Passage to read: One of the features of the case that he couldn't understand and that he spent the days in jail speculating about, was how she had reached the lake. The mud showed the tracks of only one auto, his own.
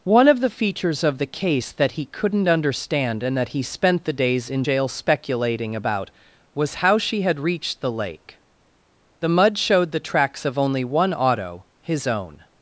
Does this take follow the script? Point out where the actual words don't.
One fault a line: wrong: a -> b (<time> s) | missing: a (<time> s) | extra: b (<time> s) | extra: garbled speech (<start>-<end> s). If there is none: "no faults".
no faults